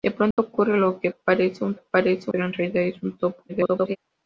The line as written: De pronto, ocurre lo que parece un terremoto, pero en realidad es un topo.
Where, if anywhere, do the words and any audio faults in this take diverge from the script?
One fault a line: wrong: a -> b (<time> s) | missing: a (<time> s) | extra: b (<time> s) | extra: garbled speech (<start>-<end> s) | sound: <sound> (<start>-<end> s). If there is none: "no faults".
sound: dropout (0.3-0.4 s)
wrong: terremoto -> parece (1.7 s)
extra: garbled speech (3.5-4.0 s)